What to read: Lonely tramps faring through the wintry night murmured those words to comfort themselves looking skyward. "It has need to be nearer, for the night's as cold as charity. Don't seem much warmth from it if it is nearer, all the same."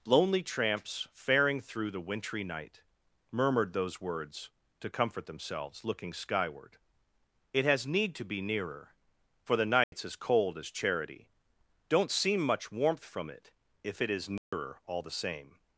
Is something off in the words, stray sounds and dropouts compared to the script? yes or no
yes